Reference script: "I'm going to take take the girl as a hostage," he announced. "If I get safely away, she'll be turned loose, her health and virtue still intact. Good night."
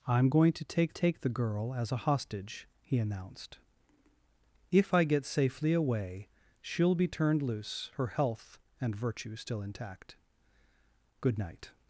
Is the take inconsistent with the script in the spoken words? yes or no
no